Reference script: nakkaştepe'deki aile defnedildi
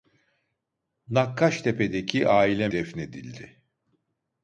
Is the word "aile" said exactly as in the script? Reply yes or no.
yes